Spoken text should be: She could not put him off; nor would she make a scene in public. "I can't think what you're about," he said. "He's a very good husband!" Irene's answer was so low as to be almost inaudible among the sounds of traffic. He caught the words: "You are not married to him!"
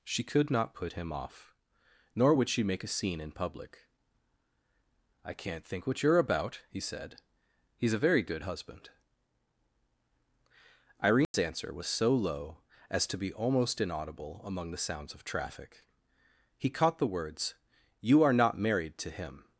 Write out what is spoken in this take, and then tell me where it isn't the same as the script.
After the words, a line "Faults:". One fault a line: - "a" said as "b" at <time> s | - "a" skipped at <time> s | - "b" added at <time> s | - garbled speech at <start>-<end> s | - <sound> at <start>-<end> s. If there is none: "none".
She could not put him off; nor would she make a scene in public. "I can't think what you're about," he said. "He's a very good husband!" Irene's answer was so low as to be almost inaudible among the sounds of traffic. He caught the words: "You are not married to him!"
Faults:
- dropout at 11.2-11.3 s